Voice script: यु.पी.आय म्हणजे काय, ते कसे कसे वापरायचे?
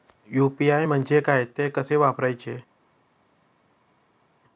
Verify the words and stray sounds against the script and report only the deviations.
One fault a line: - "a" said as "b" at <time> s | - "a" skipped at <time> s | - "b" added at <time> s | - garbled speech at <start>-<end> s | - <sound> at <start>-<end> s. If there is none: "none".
- "कसे" skipped at 2.0 s